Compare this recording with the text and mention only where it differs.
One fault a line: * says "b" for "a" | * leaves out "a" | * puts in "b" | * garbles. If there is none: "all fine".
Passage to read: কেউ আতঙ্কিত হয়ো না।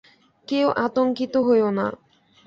all fine